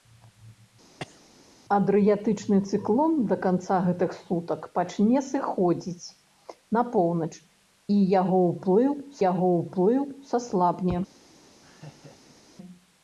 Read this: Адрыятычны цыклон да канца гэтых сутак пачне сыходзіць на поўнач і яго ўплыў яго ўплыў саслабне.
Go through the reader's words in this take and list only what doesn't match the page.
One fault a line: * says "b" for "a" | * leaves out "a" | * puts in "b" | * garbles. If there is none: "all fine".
all fine